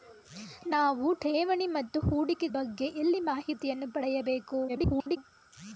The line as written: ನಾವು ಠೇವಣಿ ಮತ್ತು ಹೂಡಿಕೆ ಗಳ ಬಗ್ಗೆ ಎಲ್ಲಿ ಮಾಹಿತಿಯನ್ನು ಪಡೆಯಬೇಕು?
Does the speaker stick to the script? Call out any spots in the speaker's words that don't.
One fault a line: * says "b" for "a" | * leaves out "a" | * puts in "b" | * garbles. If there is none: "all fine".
* leaves out "ಗಳ"
* garbles